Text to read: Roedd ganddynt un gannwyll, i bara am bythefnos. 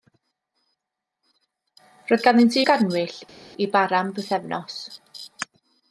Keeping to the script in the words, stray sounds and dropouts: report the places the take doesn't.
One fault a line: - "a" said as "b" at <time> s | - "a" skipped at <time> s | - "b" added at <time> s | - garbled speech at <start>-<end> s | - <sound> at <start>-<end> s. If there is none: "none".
- "un" skipped at 2.6 s